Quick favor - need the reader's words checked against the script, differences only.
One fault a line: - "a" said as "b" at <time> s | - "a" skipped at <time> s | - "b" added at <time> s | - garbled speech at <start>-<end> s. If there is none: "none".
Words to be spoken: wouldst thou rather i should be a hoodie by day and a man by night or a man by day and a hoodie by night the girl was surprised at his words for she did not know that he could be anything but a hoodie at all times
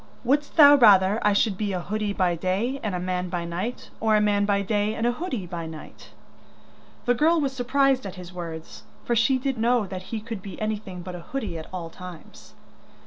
- "not" skipped at 9.6 s